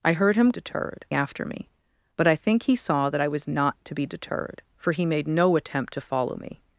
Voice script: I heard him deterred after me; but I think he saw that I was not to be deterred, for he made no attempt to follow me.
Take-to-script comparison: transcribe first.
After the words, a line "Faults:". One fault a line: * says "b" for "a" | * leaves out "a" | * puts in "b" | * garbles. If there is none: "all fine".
I heard him deterred after me; but I think he saw that I was not to be deterred, for he made no attempt to follow me.
Faults:
all fine